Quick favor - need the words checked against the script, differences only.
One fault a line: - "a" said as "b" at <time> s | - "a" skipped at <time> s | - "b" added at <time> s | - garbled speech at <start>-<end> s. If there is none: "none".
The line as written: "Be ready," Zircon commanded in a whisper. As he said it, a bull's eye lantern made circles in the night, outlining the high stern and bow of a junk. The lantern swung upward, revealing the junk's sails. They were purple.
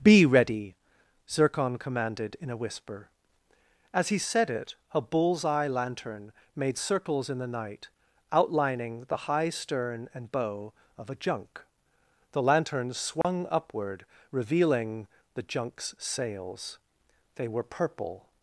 none